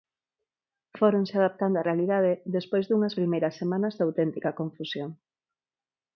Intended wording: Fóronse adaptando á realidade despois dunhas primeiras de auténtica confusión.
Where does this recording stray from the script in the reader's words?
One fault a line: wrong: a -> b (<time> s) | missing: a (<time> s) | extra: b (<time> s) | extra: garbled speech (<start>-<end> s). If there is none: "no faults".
extra: semanas (3.6 s)